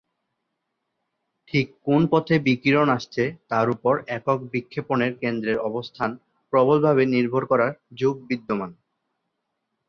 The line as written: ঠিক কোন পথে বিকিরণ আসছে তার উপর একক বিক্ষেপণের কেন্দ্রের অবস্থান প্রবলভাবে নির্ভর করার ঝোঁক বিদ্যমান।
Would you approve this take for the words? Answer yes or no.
yes